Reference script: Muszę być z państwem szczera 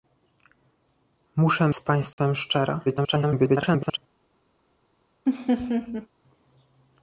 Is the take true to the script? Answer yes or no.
no